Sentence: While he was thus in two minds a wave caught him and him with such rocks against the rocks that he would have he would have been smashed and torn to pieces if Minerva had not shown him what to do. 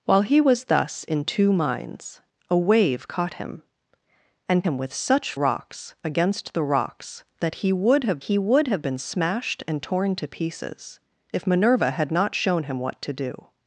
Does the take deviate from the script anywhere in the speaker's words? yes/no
no